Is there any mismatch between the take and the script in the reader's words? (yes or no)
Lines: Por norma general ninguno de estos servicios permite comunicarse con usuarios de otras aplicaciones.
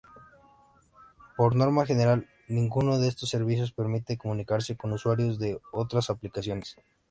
no